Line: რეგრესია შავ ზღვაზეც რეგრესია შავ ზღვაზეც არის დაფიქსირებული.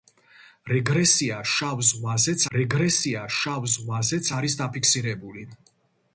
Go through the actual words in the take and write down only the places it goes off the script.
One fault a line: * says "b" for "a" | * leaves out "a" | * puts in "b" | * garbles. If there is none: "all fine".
all fine